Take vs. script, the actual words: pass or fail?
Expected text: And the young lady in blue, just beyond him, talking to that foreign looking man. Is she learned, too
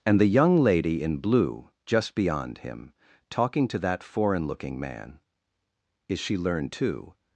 pass